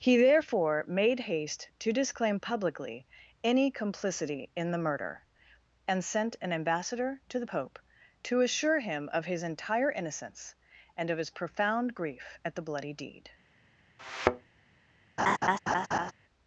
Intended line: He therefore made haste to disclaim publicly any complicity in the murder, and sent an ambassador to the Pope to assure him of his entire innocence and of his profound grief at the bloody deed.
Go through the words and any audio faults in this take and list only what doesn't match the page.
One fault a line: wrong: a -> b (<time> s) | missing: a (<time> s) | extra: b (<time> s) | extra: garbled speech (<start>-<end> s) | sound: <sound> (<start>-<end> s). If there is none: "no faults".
sound: thud (14.0-14.5 s)
sound: laugh (15.2-16.1 s)